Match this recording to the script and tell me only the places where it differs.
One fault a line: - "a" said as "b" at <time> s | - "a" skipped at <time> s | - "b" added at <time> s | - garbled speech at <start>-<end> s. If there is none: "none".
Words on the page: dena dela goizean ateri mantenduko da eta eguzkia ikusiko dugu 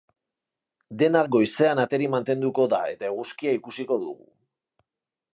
- "dela" skipped at 1.2 s